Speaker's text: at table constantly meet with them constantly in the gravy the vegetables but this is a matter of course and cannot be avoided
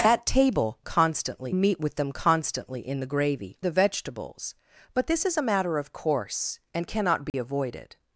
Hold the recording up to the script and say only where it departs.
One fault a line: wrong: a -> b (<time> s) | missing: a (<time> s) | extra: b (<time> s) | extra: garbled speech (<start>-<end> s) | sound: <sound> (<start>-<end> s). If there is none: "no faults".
sound: dropout (7.3-7.3 s)